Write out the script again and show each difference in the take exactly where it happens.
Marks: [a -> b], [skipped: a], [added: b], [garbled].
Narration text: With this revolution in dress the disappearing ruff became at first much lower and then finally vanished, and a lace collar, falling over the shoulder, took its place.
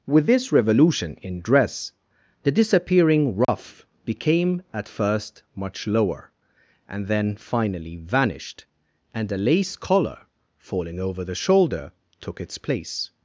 With this revolution in dress the disappearing ruff became at first much lower and then finally vanished, and a lace collar, falling over the shoulder, took its place.